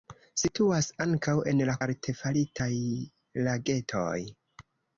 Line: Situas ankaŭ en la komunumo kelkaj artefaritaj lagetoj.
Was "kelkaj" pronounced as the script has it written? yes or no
no